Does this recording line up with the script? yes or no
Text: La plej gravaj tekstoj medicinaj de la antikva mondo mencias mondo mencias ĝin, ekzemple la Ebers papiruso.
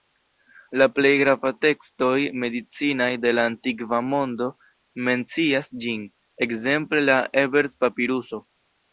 no